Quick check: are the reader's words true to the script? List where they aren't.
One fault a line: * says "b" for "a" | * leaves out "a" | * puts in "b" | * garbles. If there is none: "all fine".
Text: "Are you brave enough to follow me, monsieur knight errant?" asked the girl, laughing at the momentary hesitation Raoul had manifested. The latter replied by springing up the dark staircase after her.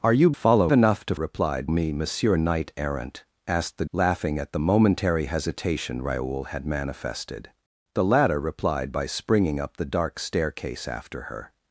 * says "follow" for "brave"
* says "replied" for "follow"
* leaves out "girl"